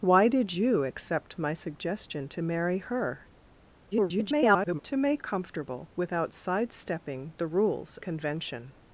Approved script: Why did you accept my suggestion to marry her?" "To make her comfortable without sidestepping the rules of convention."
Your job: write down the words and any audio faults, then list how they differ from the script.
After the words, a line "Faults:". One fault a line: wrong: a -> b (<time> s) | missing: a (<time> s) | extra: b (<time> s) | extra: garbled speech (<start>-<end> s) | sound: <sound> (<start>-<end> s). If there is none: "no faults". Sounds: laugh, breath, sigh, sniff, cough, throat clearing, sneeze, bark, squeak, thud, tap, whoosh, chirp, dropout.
Why did you accept my suggestion to marry her?" [garbled] "To make comfortable without sidestepping the rules convention."
Faults:
extra: garbled speech (3.9-4.8 s)
missing: her (5.2 s)
missing: of (8.0 s)